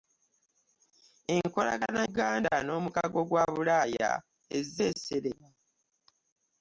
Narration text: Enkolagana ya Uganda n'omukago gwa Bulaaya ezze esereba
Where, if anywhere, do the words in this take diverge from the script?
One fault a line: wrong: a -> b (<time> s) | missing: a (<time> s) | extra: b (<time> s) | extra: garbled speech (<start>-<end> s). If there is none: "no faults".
missing: ya (2.0 s)